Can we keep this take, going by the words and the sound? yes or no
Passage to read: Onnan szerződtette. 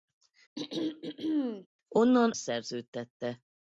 no